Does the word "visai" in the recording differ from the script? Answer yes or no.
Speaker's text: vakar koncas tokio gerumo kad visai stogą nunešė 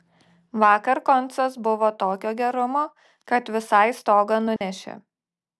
no